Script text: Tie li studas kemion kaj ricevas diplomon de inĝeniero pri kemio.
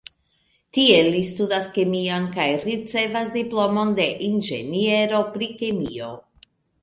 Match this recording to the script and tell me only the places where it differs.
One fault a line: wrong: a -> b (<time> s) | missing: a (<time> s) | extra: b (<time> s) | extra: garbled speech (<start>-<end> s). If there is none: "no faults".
no faults